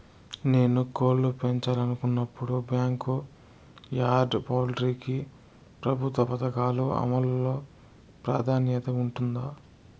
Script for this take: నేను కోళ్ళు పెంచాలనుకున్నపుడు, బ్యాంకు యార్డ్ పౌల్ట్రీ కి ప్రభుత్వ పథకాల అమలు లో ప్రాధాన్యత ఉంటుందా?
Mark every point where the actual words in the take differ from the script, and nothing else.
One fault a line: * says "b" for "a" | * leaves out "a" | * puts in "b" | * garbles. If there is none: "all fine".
all fine